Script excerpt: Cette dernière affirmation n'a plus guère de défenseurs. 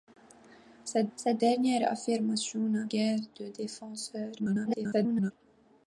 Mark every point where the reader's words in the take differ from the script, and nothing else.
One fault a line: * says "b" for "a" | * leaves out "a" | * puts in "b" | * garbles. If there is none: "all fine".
* puts in "cette"
* leaves out "plus"
* garbles